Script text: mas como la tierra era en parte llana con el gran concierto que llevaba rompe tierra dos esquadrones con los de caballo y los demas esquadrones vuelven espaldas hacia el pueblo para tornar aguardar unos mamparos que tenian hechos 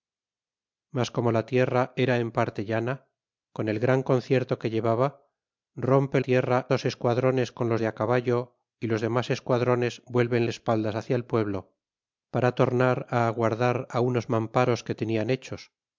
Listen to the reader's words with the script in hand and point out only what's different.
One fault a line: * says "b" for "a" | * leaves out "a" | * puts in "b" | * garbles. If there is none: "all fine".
all fine